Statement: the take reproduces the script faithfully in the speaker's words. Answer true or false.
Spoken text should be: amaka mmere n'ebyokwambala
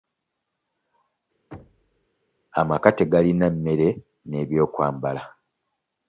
false